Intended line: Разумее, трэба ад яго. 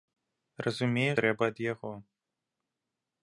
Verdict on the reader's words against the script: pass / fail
pass